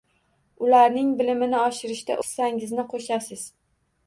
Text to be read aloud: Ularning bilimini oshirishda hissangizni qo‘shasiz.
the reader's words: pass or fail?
pass